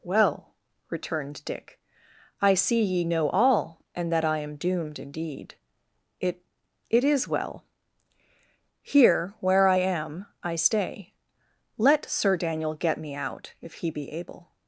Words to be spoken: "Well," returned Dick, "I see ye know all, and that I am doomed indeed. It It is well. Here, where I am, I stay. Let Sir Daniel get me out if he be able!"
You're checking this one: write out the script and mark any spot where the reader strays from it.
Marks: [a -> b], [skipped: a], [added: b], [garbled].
"Well," returned Dick, "I see ye know all, and that I am doomed indeed. It It is well. Here, where I am, I stay. Let Sir Daniel get me out if he be able!"